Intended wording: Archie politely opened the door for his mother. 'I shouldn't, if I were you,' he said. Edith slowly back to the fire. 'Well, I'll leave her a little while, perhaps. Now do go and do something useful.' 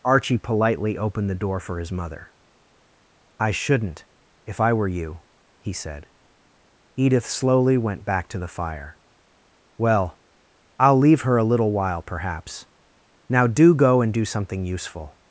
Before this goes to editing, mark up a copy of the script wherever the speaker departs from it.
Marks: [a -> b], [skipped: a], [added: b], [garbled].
Archie politely opened the door for his mother. 'I shouldn't, if I were you,' he said. Edith slowly [added: went] back to the fire. 'Well, I'll leave her a little while, perhaps. Now do go and do something useful.'